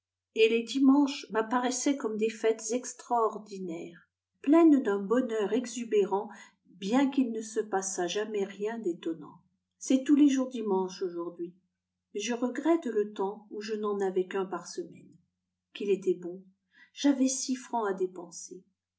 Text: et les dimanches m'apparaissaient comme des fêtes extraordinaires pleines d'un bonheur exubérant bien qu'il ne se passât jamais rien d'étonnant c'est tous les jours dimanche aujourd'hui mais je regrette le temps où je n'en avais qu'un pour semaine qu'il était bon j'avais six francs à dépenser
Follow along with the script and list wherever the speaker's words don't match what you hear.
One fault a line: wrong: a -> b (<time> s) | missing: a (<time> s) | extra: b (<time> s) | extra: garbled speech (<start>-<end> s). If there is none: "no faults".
wrong: pour -> par (14.4 s)